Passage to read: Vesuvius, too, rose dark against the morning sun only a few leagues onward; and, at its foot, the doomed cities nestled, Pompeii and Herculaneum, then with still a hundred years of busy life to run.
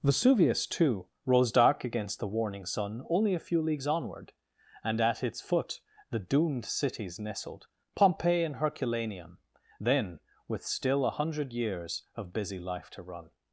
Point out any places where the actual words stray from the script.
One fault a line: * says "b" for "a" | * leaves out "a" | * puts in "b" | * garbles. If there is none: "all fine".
* says "warning" for "morning"